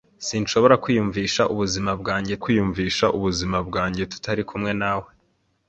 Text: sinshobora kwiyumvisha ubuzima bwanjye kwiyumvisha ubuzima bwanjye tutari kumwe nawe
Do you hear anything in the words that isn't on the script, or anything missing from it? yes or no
no